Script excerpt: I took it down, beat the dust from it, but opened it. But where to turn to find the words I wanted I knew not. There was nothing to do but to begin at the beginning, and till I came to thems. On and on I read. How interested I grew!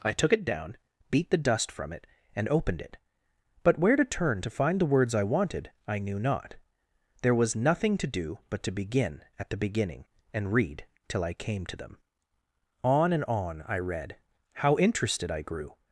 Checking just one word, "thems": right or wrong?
wrong